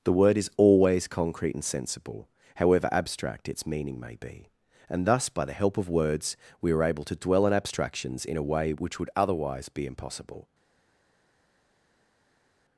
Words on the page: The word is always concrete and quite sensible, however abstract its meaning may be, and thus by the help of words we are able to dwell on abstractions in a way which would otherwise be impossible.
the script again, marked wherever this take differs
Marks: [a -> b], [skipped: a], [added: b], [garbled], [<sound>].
The word is always concrete and [skipped: quite] sensible, however abstract its meaning may be, and thus by the help of words we are able to dwell on abstractions in a way which would otherwise be impossible.